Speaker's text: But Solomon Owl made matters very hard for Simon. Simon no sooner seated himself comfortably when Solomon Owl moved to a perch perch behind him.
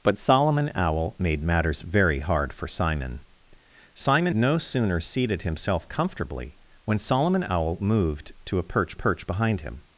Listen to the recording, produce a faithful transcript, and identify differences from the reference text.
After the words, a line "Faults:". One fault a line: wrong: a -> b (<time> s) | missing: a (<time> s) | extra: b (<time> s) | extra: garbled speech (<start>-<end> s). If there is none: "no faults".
But Solomon Owl made matters very hard for Simon. Simon no sooner seated himself comfortably when Solomon Owl moved to a perch perch behind him.
Faults:
no faults